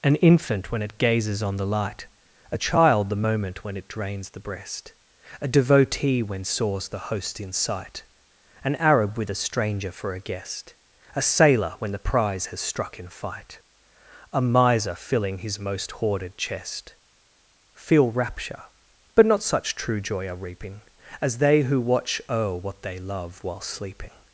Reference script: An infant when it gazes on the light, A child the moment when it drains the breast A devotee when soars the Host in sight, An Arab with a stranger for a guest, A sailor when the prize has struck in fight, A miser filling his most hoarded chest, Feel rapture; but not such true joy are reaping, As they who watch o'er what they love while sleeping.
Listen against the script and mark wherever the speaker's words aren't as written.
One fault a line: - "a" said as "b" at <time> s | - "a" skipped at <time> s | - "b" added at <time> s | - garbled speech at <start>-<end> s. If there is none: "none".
none